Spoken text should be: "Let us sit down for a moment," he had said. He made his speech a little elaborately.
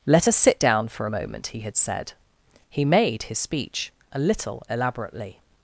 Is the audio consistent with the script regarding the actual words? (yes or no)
yes